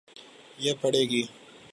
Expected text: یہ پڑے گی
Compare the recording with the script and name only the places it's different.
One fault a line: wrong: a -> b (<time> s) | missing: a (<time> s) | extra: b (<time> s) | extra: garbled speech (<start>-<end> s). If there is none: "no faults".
no faults